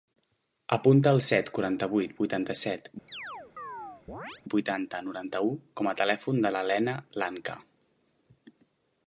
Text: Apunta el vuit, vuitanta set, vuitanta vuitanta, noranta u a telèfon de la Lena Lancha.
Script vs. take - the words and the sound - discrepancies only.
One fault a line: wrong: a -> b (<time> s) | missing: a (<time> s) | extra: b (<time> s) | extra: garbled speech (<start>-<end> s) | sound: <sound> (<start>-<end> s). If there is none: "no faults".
extra: set quaranta (1.2 s)
sound: chirp (3.1-4.4 s)
missing: vuitanta (5.0 s)
extra: com (5.8 s)